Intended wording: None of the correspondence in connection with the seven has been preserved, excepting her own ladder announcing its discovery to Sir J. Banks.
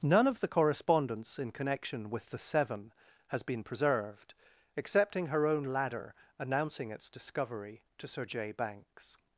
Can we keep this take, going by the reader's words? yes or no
yes